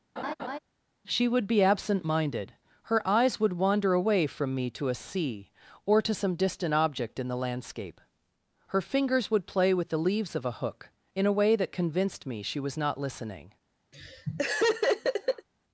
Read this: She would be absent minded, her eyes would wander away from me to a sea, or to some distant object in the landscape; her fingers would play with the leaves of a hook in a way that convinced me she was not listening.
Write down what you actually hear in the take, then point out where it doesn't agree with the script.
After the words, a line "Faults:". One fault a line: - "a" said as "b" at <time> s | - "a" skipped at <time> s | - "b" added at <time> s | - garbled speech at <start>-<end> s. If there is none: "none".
She would be absent minded, her eyes would wander away from me to a sea, or to some distant object in the landscape; her fingers would play with the leaves of a hook in a way that convinced me she was not listening.
Faults:
none